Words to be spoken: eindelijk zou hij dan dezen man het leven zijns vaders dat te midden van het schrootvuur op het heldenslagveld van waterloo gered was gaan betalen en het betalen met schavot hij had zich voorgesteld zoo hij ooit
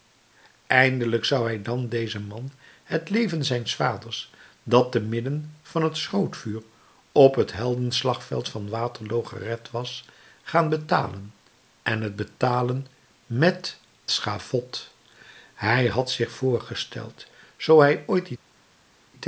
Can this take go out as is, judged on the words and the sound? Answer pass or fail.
pass